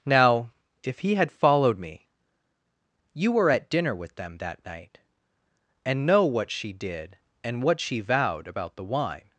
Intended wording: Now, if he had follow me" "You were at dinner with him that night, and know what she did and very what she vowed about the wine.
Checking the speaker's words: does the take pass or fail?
fail